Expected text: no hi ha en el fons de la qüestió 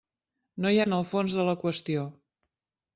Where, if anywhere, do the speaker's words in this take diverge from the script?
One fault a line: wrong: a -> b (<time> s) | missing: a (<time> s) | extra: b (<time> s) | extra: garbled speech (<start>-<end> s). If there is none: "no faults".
no faults